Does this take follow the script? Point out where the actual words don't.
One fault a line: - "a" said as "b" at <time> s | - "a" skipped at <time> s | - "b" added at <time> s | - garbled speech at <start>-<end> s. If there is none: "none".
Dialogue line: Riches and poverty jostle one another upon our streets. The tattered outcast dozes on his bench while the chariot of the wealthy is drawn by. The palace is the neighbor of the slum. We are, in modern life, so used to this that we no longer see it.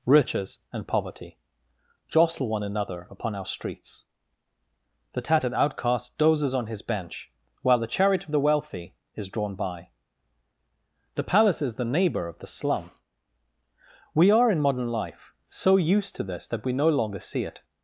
none